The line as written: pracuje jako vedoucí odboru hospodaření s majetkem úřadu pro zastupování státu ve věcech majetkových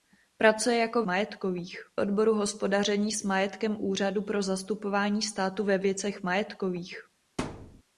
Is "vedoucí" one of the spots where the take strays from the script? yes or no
yes